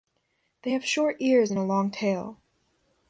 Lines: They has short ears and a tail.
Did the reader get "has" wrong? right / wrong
wrong